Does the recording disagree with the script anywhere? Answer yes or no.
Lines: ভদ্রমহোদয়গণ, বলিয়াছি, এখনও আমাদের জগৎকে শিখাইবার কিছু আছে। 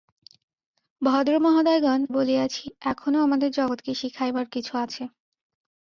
no